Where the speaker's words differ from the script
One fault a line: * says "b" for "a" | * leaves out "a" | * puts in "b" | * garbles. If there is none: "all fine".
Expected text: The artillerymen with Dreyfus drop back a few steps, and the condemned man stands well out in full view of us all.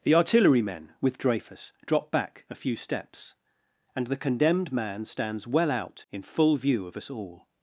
all fine